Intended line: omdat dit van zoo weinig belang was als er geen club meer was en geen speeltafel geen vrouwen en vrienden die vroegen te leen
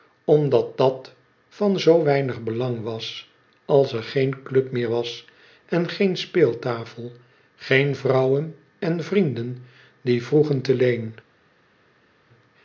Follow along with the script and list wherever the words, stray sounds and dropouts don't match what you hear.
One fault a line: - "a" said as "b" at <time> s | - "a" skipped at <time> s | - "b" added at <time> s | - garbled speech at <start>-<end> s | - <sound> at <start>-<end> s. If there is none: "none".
- "dit" said as "dat" at 0.8 s